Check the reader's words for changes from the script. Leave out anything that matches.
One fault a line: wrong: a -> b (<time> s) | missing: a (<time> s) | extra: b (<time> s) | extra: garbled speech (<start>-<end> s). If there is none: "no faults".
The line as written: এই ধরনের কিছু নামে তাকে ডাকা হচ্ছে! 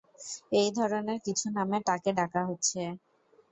no faults